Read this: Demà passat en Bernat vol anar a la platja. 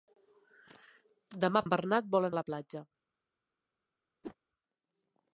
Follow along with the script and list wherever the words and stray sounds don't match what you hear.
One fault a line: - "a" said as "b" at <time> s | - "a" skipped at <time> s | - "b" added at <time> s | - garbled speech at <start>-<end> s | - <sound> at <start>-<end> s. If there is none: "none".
- "passat" skipped at 1.6 s
- "anar" skipped at 2.3 s
- whoosh at 4.2-4.4 s